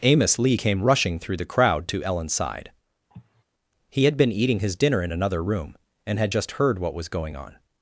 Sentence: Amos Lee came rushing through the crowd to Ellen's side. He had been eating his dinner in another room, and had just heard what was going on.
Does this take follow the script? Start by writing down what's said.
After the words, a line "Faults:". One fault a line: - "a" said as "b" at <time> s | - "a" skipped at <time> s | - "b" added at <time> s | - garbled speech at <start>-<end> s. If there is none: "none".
Amos Lee came rushing through the crowd to Ellen's side. He had been eating his dinner in another room, and had just heard what was going on.
Faults:
none